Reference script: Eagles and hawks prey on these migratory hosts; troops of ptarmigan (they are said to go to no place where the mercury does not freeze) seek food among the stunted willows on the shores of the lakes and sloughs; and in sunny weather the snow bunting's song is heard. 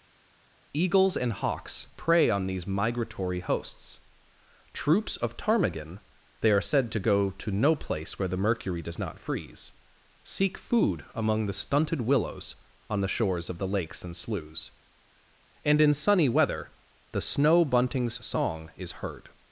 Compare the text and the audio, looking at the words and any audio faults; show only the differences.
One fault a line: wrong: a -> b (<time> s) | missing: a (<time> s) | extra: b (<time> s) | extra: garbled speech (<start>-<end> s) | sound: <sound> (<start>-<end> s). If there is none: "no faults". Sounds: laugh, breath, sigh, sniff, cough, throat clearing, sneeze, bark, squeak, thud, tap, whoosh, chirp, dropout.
no faults